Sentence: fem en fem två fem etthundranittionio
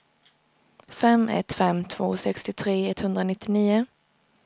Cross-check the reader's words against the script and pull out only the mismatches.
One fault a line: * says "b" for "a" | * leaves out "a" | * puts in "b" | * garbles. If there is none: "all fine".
* says "ett" for "en"
* says "sextiotre" for "fem"